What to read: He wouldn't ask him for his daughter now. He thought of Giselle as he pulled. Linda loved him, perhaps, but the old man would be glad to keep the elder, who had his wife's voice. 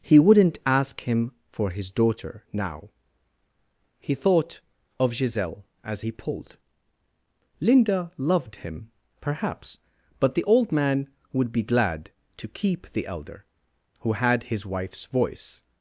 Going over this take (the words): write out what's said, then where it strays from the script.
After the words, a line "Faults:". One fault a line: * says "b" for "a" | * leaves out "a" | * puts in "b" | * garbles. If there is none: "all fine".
He wouldn't ask him for his daughter now. He thought of Giselle as he pulled. Linda loved him, perhaps, but the old man would be glad to keep the elder, who had his wife's voice.
Faults:
all fine